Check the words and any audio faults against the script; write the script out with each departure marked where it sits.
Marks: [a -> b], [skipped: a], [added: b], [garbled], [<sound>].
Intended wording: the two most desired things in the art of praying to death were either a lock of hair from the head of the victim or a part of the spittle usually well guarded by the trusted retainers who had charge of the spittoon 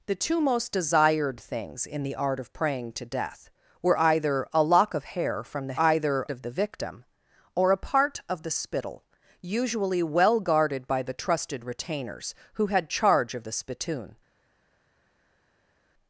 the two most desired things in the art of praying to death were either a lock of hair from the [head -> either] of the victim or a part of the spittle usually well guarded by the trusted retainers who had charge of the spittoon